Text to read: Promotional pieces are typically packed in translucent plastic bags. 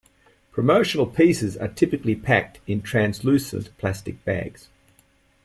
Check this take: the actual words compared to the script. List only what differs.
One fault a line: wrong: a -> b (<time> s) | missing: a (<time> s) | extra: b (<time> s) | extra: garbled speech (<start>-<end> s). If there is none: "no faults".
no faults